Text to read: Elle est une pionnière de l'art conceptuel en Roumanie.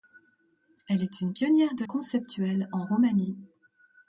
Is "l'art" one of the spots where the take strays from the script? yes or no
yes